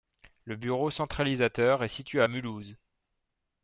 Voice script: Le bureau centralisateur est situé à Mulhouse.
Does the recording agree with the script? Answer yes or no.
yes